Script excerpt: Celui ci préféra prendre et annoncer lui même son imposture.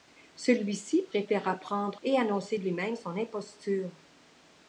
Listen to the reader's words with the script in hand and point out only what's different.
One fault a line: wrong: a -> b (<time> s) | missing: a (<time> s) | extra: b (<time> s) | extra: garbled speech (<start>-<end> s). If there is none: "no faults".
no faults